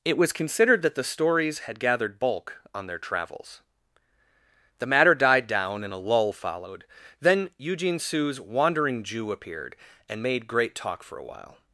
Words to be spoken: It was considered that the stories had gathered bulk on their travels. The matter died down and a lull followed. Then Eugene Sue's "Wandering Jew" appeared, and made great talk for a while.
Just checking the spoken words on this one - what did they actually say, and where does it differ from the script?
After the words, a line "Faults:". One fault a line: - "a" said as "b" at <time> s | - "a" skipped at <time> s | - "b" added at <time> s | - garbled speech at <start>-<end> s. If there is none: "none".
It was considered that the stories had gathered bulk on their travels. The matter died down and a lull followed. Then Eugene Sue's "Wandering Jew" appeared, and made great talk for a while.
Faults:
none